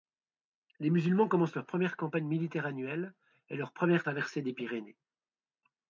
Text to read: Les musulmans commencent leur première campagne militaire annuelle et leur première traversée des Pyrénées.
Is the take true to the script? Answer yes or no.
yes